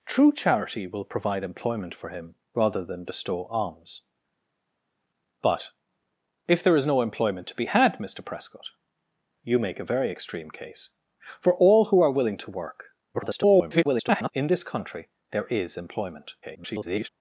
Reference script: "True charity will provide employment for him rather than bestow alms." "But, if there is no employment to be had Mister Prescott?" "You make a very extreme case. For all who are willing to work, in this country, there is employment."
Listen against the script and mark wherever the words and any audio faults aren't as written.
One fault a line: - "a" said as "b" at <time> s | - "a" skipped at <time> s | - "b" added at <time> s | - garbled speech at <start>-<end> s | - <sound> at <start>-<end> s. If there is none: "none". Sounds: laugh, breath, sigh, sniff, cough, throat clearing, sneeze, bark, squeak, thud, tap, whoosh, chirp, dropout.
- garbled speech at 13.1-14.3 s
- garbled speech at 16.4-17.1 s